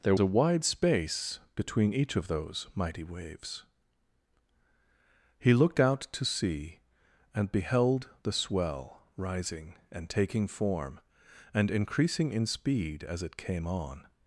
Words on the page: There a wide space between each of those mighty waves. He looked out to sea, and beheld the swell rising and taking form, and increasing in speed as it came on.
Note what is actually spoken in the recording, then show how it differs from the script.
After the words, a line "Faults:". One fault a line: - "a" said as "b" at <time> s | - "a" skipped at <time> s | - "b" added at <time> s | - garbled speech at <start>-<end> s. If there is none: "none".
There a wide space between each of those mighty waves. He looked out to sea, and beheld the swell rising and taking form, and increasing in speed as it came on.
Faults:
none